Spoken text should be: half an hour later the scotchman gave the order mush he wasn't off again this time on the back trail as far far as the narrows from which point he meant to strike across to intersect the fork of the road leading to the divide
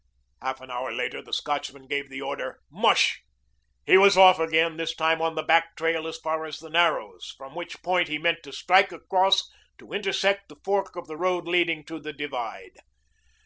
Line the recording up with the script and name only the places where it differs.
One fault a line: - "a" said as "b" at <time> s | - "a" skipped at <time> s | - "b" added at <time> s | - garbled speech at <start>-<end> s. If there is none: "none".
- "wasn't" said as "was" at 4.0 s
- "far" skipped at 6.4 s